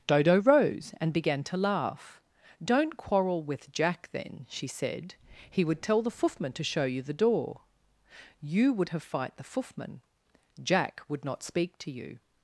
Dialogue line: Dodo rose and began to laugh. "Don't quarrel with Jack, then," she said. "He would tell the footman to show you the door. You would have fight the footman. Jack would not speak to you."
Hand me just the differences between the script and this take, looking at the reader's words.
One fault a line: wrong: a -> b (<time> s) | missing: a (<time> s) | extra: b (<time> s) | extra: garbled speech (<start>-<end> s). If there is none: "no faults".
no faults